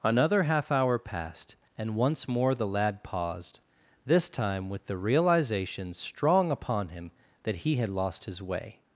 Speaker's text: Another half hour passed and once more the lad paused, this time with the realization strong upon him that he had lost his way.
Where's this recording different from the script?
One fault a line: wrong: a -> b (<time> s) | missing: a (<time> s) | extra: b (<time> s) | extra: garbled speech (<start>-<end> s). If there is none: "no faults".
no faults